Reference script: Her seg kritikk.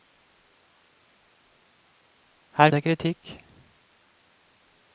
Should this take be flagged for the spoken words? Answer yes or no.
no